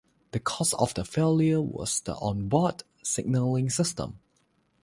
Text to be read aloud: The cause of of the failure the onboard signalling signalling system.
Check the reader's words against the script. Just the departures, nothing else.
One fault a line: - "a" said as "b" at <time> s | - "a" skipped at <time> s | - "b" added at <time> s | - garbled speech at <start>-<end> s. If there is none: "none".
- "of" skipped at 0.9 s
- "was" added at 1.6 s
- "signalling" skipped at 3.7 s